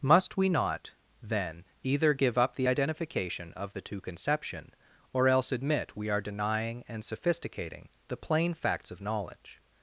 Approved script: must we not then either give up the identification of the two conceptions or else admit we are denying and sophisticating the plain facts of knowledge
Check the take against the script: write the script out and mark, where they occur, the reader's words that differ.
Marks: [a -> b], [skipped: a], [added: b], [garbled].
must we not then either give up the identification of the two [conceptions -> conception] or else admit we are denying and sophisticating the plain facts of knowledge